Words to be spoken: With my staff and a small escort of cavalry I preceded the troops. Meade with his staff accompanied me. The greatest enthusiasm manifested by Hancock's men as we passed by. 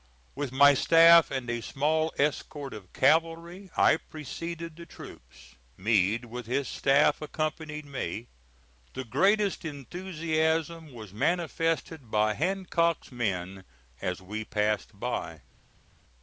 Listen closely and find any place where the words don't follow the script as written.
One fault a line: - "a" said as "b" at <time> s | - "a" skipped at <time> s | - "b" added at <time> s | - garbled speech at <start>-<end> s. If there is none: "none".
- "was" added at 10.9 s